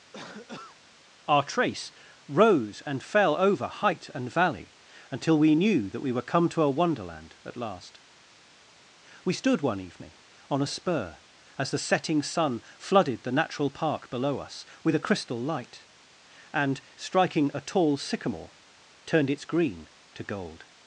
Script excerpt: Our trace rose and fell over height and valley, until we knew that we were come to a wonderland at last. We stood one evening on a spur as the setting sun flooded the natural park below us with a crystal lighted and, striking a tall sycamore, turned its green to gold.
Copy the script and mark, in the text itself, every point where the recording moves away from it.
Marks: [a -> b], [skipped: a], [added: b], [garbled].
Our trace rose and fell over height and valley, until we knew that we were come to a wonderland at last. We stood one evening on a spur as the setting sun flooded the natural park below us with a crystal [lighted -> light] and, striking a tall sycamore, turned its green to gold.